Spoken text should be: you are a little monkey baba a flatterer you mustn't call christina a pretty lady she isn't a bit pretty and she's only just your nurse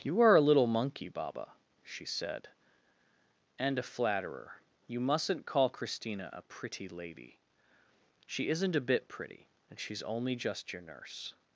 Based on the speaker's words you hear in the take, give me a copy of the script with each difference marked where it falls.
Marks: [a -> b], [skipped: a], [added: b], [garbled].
you are a little monkey baba [added: she said and] a flatterer you mustn't call christina a pretty lady she isn't a bit pretty and she's only just your nurse